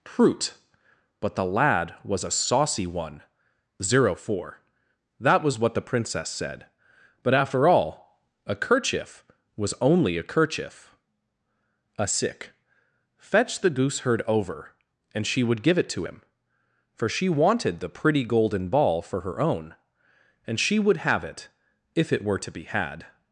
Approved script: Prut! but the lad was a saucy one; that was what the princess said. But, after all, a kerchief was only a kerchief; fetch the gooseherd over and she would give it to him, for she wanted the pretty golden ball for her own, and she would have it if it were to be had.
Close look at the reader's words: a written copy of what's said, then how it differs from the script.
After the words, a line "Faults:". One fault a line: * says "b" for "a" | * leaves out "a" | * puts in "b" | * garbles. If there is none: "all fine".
Prut! but the lad was a saucy one; zero four that was what the princess said. But, after all, a kerchief was only a kerchief; a sick fetch the gooseherd over and she would give it to him, for she wanted the pretty golden ball for her own, and she would have it if it were to be had.
Faults:
* puts in "zero four"
* puts in "a sick"